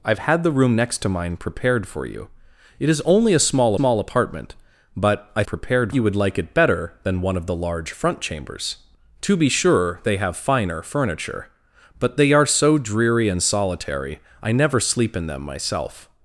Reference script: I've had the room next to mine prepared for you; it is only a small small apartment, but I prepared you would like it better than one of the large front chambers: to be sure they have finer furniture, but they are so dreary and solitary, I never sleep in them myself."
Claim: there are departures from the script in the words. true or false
false